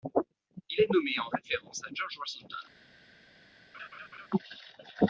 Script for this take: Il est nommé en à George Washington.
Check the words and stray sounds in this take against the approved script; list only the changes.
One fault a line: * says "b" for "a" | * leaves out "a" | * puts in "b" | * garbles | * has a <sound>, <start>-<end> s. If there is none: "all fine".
* puts in "référence"
* has a laugh, 3.7-4.3 s